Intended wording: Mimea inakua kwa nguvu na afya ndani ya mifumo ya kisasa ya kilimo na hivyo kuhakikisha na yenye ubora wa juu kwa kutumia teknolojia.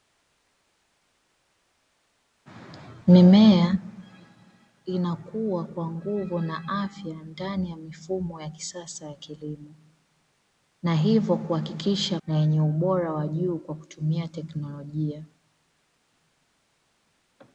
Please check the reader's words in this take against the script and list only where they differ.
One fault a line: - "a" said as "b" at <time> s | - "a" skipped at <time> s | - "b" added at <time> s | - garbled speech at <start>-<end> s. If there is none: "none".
none